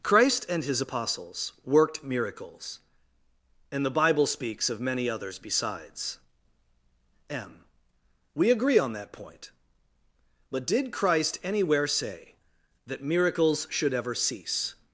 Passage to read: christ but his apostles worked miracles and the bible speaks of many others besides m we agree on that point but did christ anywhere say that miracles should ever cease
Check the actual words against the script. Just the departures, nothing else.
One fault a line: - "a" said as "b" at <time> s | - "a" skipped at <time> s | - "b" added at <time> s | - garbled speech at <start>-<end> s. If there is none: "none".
- "but" said as "and" at 0.5 s